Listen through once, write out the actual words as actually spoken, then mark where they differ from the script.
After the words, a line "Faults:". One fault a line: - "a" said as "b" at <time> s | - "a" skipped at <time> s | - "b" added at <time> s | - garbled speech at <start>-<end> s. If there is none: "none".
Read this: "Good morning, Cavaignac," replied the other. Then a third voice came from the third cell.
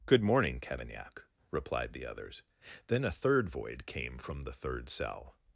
"Good morning, Cavaignac," replied the others. Then a third void came from the third cell.
Faults:
- "other" said as "others" at 2.0 s
- "voice" said as "void" at 3.5 s